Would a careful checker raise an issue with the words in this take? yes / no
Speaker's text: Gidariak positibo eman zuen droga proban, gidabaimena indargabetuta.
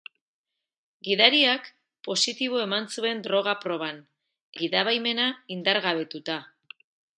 no